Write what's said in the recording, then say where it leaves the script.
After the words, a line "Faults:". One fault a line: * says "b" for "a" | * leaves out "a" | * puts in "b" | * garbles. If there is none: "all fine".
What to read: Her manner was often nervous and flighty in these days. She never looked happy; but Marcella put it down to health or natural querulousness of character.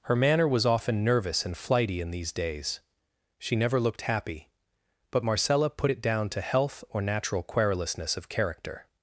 Her manner was often nervous and flighty in these days. She never looked happy; but Marcella put it down to health or natural querulousness of character.
Faults:
all fine